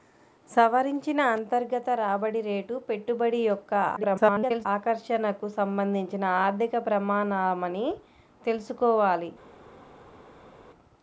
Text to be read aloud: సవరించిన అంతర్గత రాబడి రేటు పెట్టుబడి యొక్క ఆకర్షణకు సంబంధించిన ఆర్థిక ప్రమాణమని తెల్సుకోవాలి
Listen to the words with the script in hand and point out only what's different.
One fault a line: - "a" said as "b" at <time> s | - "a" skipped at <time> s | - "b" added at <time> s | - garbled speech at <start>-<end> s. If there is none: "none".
- garbled speech at 4.0-4.7 s